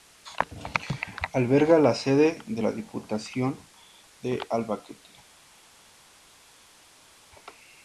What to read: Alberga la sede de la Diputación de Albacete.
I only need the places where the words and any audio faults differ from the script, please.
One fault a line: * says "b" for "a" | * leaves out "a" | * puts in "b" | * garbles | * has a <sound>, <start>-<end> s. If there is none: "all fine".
all fine